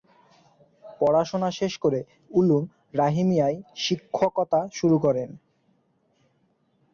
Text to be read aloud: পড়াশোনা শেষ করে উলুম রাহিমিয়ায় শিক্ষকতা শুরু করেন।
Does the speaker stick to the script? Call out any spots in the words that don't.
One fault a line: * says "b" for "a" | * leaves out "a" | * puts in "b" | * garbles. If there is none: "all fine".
all fine